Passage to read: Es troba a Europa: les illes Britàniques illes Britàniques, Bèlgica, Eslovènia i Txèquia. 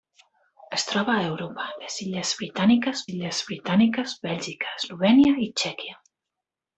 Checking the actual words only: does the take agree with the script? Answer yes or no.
yes